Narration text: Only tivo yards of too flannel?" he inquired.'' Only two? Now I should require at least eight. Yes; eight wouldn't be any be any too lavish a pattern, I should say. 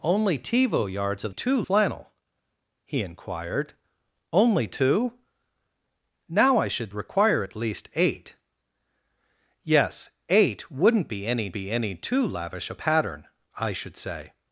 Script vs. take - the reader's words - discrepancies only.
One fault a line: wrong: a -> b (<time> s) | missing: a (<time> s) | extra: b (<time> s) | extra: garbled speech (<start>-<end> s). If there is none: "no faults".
no faults